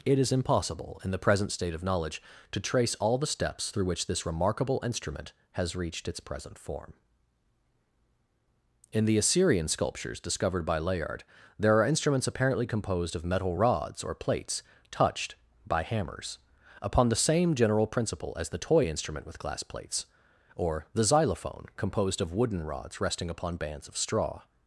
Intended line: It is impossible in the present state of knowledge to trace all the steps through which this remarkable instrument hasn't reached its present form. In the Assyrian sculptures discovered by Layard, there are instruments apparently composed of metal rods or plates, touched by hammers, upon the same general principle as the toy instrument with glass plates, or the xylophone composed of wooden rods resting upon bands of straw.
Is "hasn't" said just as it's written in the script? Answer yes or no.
no